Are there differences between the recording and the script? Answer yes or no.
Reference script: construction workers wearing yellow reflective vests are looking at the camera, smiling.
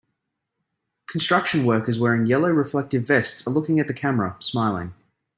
no